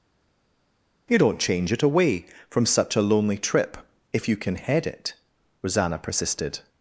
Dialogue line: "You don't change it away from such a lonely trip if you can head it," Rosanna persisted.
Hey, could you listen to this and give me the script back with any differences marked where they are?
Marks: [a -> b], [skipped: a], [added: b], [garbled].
"You don't change it away from such a lonely trip if you can head it," Rosanna persisted.